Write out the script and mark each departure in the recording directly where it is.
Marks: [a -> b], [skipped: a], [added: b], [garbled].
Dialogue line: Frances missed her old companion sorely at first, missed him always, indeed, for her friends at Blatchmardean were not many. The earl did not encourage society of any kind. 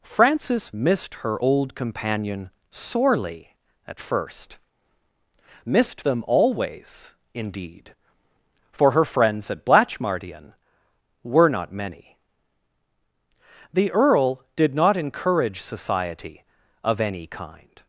Frances missed her old companion sorely at first, missed [him -> them] always, indeed, for her friends at Blatchmardean were not many. The earl did not encourage society of any kind.